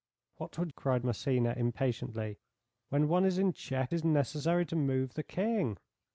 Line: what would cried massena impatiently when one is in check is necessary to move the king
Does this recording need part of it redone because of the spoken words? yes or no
no